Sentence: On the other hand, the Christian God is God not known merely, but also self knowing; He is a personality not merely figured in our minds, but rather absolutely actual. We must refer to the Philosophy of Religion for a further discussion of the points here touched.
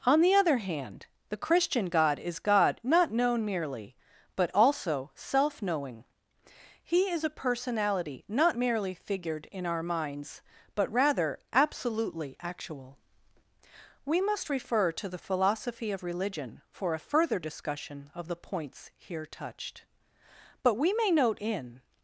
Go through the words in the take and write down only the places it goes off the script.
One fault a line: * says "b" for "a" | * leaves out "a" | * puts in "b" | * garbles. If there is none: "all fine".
* puts in "But we may note in"